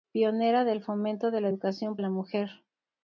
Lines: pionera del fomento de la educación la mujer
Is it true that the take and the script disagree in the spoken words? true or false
false